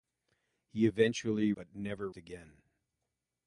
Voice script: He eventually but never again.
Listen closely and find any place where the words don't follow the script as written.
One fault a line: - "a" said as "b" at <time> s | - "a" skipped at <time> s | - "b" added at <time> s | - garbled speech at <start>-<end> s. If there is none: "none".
none